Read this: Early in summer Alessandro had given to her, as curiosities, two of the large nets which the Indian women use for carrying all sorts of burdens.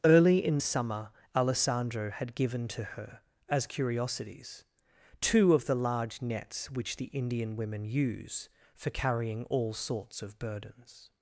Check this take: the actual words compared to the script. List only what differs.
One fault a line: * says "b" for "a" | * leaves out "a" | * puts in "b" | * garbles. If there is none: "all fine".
all fine